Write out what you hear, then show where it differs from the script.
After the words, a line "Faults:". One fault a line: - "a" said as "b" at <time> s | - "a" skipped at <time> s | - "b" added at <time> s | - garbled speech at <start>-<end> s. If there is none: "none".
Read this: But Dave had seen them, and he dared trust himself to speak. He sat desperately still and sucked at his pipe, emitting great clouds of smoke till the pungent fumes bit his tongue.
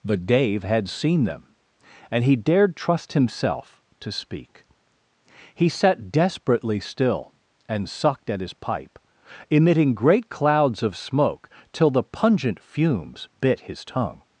But Dave had seen them, and he dared trust himself to speak. He sat desperately still and sucked at his pipe, emitting great clouds of smoke till the pungent fumes bit his tongue.
Faults:
none